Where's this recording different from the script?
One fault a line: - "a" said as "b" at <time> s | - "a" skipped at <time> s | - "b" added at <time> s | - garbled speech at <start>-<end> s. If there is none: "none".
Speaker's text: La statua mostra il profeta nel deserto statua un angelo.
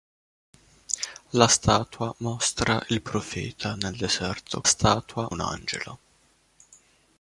none